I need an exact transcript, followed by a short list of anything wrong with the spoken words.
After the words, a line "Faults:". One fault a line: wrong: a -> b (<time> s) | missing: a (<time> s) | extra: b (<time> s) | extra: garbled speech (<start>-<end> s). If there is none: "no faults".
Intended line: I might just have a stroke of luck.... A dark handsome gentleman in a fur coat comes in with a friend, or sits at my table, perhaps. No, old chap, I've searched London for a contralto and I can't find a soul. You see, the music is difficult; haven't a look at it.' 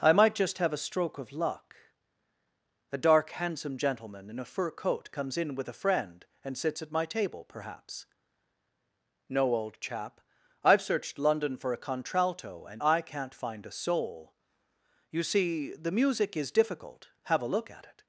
I might just have a stroke of luck.... A dark handsome gentleman in a fur coat comes in with a friend, and sits at my table, perhaps. No, old chap, I've searched London for a contralto and I can't find a soul. You see, the music is difficult; have a look at it.'
Faults:
wrong: or -> and (6.4 s)
wrong: haven't -> have (17.2 s)